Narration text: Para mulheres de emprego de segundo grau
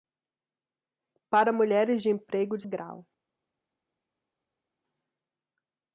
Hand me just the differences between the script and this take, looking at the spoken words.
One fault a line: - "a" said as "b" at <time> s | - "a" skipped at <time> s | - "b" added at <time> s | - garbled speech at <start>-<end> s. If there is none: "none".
- "segundo" skipped at 2.6 s